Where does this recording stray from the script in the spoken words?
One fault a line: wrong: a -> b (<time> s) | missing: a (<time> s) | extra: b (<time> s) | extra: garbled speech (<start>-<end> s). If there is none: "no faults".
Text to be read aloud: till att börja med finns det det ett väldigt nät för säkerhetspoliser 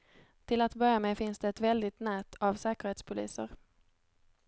missing: det (1.5 s)
wrong: för -> av (2.3 s)